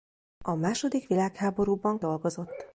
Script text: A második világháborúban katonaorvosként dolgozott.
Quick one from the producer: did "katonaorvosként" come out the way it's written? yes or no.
no